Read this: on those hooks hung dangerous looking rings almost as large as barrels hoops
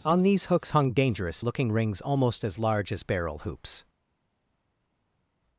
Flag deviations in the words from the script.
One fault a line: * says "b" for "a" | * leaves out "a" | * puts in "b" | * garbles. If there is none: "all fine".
* says "these" for "those"
* says "barrel" for "barrels"